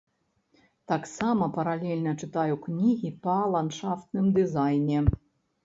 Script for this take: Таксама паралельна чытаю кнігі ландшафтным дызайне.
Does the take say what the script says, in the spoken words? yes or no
no